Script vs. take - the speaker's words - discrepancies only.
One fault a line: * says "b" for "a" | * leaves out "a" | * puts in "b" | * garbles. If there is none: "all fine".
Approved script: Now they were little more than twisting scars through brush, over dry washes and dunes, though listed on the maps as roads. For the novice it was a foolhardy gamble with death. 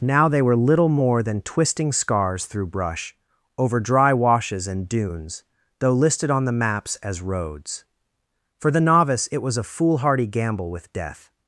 all fine